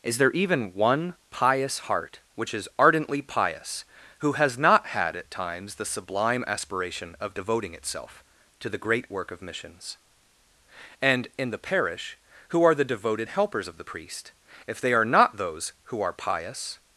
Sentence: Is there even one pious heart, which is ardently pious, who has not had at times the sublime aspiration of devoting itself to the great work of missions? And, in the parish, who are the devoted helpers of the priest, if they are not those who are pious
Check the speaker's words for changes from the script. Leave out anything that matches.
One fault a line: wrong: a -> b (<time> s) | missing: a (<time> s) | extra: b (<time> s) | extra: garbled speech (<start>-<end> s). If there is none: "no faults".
no faults